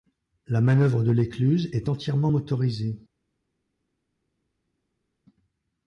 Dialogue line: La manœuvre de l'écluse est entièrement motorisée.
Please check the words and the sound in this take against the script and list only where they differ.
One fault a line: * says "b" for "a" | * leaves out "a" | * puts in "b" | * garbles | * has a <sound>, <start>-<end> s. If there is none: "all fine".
all fine